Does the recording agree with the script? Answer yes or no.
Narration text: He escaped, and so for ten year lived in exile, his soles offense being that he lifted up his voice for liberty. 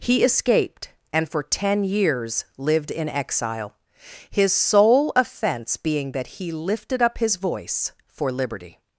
no